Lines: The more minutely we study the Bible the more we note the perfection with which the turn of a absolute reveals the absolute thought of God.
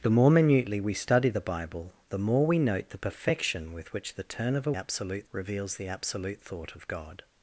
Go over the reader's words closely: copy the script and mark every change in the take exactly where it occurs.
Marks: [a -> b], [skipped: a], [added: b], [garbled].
The more minutely we study the Bible the more we note the perfection with which the turn of a absolute reveals the absolute thought of God.